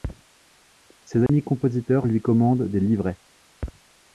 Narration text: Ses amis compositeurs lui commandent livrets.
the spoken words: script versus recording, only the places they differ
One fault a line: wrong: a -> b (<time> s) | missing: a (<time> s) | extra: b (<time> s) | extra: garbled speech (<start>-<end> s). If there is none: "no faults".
extra: des (2.7 s)